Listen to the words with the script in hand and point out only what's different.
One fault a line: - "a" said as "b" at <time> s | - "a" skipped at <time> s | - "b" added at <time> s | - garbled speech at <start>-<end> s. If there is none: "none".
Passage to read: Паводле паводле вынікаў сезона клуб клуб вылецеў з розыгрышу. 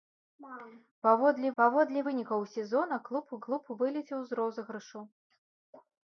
none